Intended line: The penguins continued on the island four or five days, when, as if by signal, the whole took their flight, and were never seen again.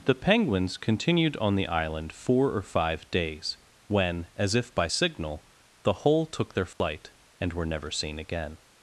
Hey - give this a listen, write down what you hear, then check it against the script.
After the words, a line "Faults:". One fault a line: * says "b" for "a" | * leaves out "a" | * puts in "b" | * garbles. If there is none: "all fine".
The penguins continued on the island four or five days, when, as if by signal, the whole took their flight, and were never seen again.
Faults:
all fine